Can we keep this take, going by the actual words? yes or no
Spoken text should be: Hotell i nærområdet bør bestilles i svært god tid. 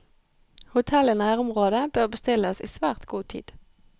yes